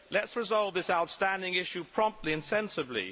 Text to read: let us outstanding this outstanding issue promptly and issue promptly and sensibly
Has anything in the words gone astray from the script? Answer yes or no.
yes